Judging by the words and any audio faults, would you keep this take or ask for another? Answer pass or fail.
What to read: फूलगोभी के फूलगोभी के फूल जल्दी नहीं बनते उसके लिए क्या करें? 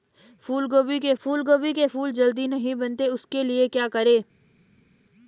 pass